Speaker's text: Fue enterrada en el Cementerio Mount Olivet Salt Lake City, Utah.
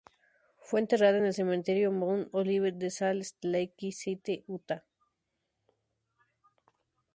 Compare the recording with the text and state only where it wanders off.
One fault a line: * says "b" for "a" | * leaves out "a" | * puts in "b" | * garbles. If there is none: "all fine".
* puts in "de"